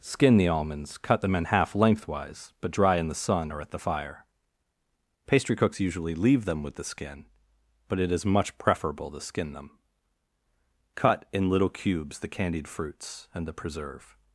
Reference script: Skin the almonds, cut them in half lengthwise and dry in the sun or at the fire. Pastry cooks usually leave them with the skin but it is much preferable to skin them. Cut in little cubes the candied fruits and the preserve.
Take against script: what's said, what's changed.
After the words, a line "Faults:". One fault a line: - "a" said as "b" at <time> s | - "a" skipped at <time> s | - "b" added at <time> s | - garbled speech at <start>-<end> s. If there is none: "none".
Skin the almonds, cut them in half lengthwise but dry in the sun or at the fire. Pastry cooks usually leave them with the skin but it is much preferable to skin them. Cut in little cubes the candied fruits and the preserve.
Faults:
- "and" said as "but" at 2.6 s